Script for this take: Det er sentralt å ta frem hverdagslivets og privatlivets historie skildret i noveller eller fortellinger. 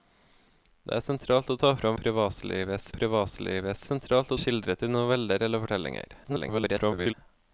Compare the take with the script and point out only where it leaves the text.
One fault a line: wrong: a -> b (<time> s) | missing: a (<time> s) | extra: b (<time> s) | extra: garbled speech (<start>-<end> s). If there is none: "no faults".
wrong: hverdagslivets -> privatlivets (2.0 s)
wrong: historie -> sentralt (3.9 s)
extra: garbled speech (6.2-7.1 s)